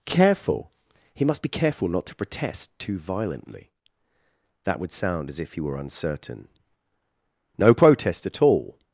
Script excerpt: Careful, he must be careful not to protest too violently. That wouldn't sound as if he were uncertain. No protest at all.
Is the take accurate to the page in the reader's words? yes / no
no